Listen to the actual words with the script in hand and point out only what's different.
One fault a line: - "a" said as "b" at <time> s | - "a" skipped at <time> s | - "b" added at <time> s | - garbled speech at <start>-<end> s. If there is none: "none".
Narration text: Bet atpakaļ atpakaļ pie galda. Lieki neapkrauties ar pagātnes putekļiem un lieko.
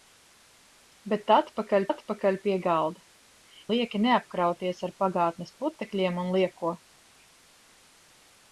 none